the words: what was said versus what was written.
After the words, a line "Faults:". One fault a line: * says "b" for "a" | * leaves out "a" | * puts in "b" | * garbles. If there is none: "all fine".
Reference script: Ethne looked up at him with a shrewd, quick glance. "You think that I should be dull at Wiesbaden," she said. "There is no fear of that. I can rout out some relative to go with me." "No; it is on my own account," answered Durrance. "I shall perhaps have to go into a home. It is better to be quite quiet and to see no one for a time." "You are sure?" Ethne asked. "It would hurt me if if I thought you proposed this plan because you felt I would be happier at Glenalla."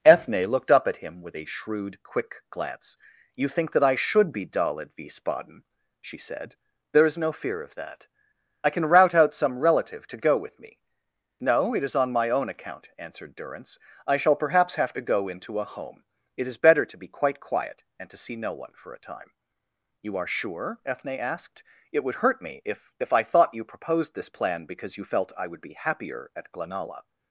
Ethne looked up at him with a shrewd, quick glance. "You think that I should be dull at Wiesbaden," she said. "There is no fear of that. I can rout out some relative to go with me." "No; it is on my own account," answered Durrance. "I shall perhaps have to go into a home. It is better to be quite quiet and to see no one for a time." "You are sure?" Ethne asked. "It would hurt me if if I thought you proposed this plan because you felt I would be happier at Glenalla."
Faults:
all fine